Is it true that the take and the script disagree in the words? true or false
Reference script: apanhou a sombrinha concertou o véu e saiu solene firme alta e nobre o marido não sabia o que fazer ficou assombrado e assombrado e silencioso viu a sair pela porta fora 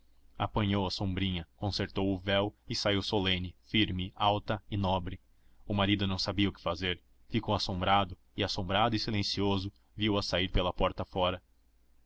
false